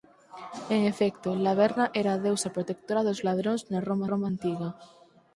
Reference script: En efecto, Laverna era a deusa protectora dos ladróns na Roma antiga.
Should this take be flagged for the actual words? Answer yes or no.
yes